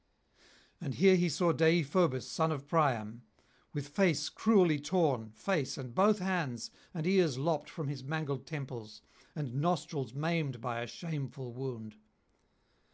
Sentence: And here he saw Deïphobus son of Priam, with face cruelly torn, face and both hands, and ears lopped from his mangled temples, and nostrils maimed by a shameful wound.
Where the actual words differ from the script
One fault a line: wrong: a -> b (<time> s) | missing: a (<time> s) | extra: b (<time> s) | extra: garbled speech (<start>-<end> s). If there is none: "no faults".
no faults